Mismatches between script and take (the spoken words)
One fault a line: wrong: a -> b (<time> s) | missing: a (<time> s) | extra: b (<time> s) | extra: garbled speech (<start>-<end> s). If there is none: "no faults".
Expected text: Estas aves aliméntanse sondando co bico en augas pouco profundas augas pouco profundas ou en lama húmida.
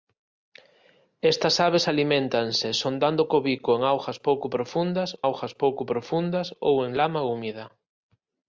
no faults